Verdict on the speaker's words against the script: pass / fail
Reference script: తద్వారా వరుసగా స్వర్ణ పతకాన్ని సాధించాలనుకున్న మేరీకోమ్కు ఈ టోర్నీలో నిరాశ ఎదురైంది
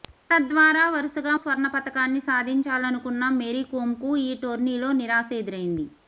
pass